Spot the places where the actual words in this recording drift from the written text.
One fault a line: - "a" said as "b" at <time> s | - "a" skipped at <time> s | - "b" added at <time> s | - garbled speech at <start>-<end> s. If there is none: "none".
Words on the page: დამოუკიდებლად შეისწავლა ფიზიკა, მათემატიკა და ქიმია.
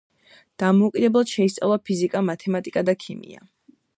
none